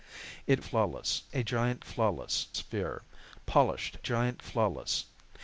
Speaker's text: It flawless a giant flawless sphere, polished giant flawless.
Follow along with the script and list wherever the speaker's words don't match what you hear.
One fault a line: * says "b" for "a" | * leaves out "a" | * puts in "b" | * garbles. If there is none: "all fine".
all fine